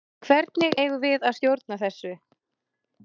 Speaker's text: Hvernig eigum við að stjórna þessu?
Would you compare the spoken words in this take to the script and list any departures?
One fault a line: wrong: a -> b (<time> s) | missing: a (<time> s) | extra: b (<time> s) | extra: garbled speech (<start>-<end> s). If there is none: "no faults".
no faults